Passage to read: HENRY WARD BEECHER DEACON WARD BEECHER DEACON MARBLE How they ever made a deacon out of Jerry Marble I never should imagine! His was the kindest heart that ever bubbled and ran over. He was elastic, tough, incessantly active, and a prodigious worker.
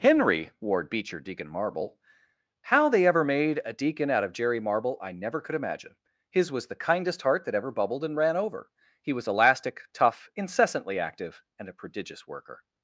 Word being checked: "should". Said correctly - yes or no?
no